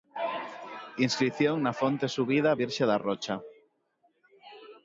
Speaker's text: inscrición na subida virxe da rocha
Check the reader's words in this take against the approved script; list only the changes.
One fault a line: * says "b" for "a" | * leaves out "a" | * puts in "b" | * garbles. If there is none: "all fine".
* puts in "fonte"